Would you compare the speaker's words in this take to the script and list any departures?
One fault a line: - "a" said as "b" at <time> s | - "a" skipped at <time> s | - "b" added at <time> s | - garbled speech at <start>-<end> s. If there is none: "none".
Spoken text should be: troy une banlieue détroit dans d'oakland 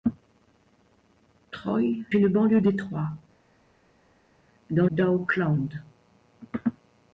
none